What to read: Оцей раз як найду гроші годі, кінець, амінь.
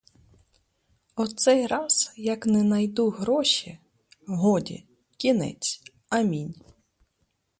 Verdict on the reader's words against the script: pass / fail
fail